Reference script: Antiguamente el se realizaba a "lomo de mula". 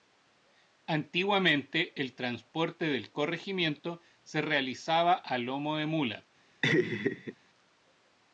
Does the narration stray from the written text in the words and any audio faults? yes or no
yes